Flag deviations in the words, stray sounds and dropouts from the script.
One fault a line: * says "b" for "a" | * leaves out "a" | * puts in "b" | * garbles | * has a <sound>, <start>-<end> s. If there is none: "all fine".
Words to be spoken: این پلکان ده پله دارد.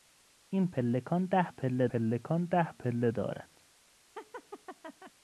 * puts in "پلکان ده پله"
* has a laugh, 4.2-5.1 s